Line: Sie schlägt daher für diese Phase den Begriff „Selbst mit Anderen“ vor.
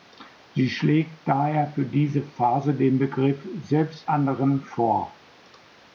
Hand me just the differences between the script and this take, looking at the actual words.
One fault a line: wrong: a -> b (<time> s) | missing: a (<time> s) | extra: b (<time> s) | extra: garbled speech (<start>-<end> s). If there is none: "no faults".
missing: mit (4.1 s)